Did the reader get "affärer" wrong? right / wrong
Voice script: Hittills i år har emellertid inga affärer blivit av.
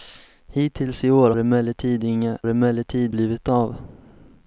wrong